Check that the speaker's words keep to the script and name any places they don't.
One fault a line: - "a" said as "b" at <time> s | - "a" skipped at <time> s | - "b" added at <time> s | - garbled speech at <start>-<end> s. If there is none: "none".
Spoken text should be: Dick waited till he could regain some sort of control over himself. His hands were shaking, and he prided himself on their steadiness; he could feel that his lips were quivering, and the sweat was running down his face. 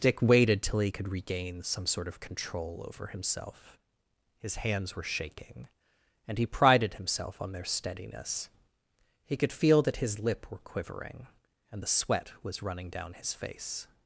- "lips" said as "lip" at 10.2 s